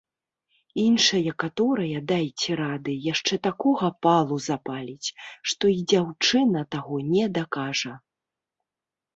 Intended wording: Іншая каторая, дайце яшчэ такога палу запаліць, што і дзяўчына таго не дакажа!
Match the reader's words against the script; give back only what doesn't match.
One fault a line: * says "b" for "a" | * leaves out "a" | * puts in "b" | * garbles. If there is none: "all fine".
* puts in "рады"